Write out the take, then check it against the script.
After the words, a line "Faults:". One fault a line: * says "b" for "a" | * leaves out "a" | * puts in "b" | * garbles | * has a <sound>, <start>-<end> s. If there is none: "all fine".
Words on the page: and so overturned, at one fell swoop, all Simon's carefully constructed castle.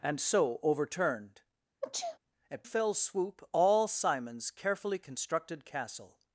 and so overturned, at fell swoop, all Simon's carefully constructed castle.
Faults:
* has a sneeze, 1.8-2.2 s
* leaves out "one"